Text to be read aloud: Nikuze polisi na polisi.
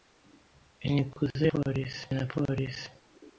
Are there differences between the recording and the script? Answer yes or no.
no